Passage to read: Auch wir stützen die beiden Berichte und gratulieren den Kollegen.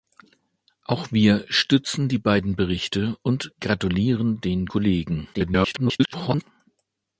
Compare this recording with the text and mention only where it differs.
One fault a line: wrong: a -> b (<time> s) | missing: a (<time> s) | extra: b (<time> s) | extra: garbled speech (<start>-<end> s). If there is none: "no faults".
extra: garbled speech (5.3-6.4 s)